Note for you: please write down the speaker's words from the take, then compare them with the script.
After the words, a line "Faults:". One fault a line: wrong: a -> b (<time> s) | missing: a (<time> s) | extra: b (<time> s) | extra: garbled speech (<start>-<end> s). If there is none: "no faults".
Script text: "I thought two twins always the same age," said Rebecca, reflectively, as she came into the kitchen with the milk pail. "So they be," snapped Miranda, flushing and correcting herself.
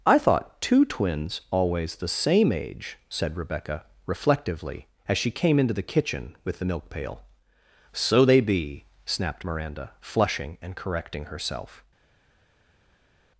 "I thought two twins always the same age," said Rebecca, reflectively, as she came into the kitchen with the milk pail. "So they be," snapped Miranda, flushing and correcting herself.
Faults:
no faults